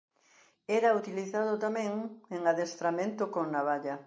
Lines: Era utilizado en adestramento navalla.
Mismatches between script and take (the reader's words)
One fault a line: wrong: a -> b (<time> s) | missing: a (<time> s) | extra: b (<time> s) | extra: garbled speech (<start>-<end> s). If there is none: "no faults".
extra: tamén (1.6 s)
extra: con (3.3 s)